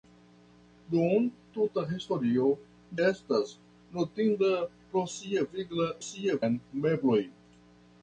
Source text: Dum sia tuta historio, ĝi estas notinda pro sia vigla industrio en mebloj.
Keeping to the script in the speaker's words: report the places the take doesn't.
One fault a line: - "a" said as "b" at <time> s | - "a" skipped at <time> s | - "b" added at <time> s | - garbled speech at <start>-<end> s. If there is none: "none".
- "sia" skipped at 1.2 s
- "ĝi" skipped at 2.5 s
- "industrio" said as "sia" at 6.1 s